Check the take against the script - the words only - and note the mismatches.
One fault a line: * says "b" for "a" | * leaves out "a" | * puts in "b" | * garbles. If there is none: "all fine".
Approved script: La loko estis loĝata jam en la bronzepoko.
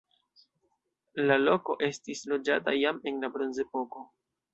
all fine